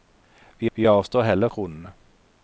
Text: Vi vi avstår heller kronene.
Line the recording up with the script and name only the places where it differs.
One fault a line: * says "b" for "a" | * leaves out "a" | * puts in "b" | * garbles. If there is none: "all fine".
all fine